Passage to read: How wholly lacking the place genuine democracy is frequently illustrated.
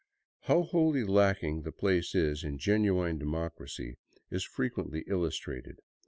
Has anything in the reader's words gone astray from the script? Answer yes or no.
yes